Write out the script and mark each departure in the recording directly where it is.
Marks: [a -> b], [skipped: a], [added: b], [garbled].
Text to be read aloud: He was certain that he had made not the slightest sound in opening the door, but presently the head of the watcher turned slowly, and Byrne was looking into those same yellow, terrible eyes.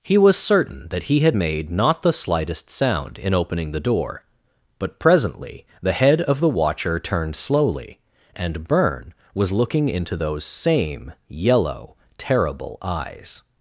He was certain that he had made not the slightest sound in opening the door, but presently the head of the watcher turned slowly, and Byrne was looking into those same yellow, terrible eyes.